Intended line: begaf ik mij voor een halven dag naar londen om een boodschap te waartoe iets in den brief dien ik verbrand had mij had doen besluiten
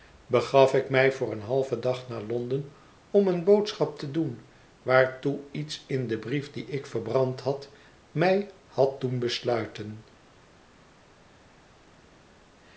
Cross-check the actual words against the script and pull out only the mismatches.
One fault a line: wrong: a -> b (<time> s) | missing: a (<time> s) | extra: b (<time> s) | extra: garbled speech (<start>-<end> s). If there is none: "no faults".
extra: doen (4.1 s)